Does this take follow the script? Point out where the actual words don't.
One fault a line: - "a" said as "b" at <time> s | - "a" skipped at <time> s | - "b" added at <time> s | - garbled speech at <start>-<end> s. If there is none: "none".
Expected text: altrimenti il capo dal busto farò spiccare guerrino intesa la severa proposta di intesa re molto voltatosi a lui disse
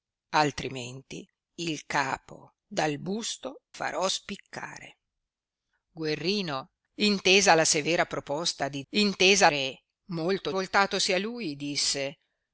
none